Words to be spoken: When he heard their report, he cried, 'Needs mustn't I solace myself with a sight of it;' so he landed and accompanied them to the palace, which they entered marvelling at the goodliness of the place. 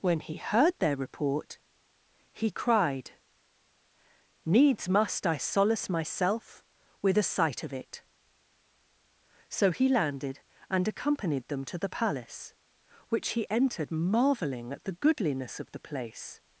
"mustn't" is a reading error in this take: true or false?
true